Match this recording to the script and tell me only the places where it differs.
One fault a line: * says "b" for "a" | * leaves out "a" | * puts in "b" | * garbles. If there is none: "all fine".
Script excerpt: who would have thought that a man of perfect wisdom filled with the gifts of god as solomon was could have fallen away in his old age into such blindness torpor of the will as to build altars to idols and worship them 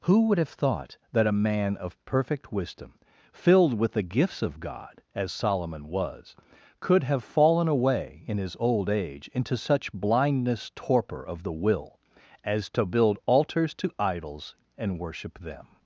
all fine